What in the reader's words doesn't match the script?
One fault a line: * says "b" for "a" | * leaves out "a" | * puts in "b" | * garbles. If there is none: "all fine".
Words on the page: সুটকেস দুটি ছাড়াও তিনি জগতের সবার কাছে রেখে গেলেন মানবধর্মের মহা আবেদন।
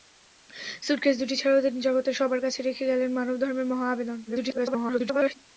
* garbles